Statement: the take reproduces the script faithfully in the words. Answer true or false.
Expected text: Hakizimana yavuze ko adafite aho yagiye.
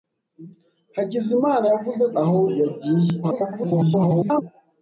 false